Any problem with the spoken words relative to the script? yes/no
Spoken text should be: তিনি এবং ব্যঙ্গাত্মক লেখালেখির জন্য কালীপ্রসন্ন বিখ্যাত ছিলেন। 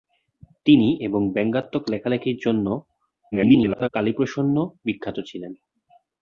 yes